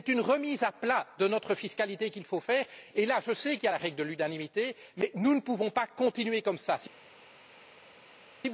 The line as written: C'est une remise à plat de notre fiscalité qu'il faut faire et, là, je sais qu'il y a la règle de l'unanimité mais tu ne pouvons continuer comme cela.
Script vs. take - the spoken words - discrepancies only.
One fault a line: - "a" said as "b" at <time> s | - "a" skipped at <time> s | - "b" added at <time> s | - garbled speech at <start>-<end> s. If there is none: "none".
- "tu" said as "nous" at 5.1 s
- "pas" added at 5.7 s